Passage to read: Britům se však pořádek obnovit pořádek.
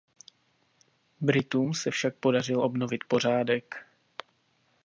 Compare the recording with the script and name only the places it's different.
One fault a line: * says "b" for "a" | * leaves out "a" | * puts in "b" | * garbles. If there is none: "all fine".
* says "podařil" for "pořádek"